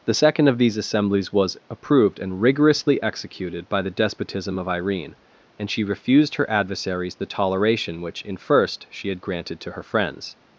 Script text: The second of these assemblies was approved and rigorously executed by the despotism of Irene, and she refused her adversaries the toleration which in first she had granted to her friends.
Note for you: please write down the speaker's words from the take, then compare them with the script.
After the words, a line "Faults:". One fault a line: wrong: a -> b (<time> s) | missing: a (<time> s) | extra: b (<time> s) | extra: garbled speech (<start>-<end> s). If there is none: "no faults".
The second of these assemblies was approved and rigorously executed by the despotism of Irene, and she refused her adversaries the toleration which in first she had granted to her friends.
Faults:
no faults